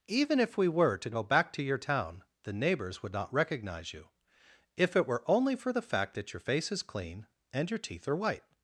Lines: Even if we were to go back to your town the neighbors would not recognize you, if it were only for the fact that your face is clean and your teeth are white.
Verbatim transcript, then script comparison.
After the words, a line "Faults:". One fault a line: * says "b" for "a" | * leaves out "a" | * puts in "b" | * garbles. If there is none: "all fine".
Even if we were to go back to your town the neighbors would not recognize you, if it were only for the fact that your face is clean and your teeth are white.
Faults:
all fine